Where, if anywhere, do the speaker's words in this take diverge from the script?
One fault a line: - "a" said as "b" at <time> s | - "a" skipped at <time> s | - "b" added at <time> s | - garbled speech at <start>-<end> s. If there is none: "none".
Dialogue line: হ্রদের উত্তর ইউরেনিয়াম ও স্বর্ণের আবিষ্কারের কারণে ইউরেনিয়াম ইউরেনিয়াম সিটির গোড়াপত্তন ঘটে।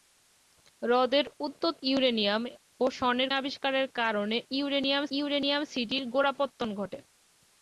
none